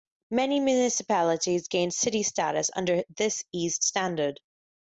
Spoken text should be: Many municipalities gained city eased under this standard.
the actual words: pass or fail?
fail